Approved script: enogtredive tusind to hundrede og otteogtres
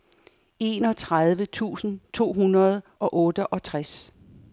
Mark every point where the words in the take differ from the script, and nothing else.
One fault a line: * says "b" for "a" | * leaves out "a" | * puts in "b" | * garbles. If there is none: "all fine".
all fine